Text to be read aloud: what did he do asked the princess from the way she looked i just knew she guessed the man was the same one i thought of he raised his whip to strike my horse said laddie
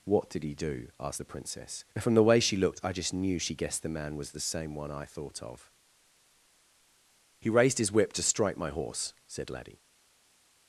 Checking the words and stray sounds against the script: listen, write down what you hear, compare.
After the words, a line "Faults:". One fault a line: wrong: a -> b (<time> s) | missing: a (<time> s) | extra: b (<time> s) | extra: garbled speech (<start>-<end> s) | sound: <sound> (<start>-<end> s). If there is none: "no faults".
what did he do asked the princess from the way she looked i just knew she guessed the man was the same one i thought of he raised his whip to strike my horse said laddie
Faults:
no faults